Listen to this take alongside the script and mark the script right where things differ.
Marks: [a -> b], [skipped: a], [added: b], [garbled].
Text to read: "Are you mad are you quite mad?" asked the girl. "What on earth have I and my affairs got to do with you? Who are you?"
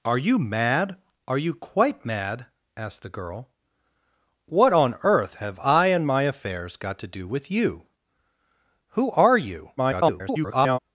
"Are you mad are you quite mad?" asked the girl. "What on earth have I and my affairs got to do with you? Who are you?" [garbled]